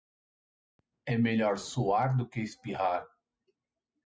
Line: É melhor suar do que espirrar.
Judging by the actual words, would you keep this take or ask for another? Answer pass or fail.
pass